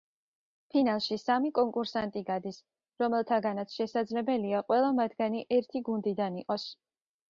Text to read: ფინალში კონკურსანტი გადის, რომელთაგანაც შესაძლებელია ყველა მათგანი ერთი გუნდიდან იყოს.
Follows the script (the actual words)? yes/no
no